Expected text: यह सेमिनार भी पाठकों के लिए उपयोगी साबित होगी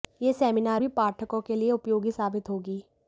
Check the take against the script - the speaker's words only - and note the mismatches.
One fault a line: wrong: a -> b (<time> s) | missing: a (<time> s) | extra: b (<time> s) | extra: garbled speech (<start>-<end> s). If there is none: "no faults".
no faults